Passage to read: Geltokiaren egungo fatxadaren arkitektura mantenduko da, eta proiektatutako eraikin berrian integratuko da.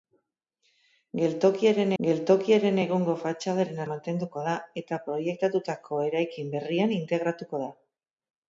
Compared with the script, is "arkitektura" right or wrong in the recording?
wrong